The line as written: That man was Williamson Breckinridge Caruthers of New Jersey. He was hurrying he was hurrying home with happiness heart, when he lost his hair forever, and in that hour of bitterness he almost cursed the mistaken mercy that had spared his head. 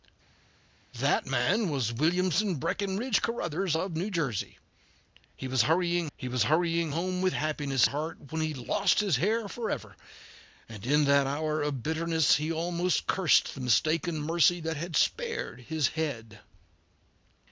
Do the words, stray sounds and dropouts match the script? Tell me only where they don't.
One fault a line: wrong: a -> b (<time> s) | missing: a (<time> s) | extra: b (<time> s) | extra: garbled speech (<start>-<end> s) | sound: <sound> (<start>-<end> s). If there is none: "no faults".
no faults